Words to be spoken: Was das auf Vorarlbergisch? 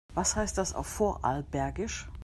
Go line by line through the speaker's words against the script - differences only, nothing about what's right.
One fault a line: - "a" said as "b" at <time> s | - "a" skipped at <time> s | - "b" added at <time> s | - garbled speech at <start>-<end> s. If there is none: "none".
- "heißt" added at 0.3 s